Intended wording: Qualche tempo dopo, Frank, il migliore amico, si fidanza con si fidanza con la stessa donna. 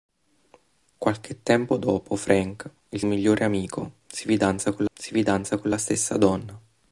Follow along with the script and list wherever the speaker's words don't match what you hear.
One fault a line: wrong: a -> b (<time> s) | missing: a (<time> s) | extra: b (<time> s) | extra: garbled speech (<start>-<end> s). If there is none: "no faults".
no faults